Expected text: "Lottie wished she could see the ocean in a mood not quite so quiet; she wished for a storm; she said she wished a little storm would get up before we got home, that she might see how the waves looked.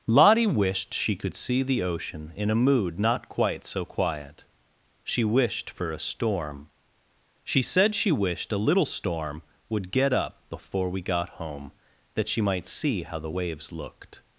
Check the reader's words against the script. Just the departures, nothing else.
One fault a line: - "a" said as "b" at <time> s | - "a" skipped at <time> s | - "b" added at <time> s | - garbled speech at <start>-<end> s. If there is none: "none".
none